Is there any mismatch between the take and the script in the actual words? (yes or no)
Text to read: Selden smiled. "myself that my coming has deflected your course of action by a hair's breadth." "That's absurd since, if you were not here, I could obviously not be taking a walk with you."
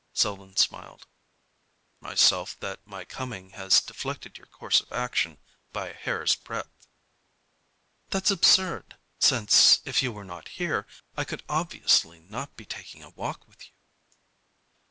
no